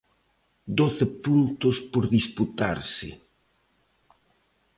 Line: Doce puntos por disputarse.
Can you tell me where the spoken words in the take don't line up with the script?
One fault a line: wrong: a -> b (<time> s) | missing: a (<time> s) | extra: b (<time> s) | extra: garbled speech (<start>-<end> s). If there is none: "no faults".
no faults